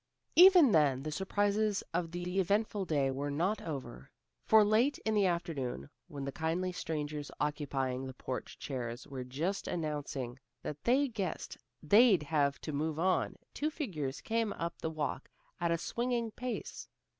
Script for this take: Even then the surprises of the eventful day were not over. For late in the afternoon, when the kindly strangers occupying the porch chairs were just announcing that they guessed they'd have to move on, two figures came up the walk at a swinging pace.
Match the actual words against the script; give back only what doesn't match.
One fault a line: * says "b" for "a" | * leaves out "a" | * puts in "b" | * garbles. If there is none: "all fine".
* puts in "the"